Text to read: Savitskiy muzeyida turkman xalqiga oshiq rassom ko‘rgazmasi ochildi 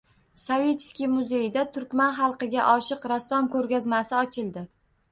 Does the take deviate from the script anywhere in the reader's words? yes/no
no